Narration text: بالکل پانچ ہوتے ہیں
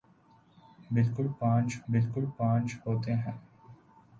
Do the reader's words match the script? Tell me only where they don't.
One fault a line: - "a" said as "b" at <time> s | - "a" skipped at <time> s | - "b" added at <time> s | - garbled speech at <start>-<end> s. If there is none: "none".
- "بالکل پانچ" added at 1.9 s